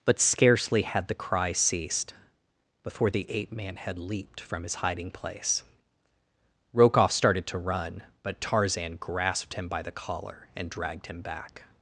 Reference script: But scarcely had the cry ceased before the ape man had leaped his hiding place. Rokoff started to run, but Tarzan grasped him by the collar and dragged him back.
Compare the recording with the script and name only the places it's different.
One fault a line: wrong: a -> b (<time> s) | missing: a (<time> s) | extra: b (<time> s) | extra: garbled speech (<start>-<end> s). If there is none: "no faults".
extra: from (4.4 s)